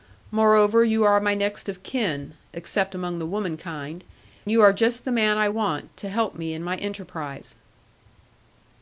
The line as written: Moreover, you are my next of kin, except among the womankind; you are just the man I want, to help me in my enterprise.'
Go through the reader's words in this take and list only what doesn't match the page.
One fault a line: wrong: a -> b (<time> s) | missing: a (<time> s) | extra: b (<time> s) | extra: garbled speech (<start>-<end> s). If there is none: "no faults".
no faults